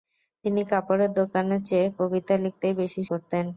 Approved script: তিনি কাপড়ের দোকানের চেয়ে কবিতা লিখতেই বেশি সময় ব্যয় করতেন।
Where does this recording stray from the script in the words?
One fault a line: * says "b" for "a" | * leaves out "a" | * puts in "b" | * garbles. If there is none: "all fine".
* leaves out "সময় ব্যয়"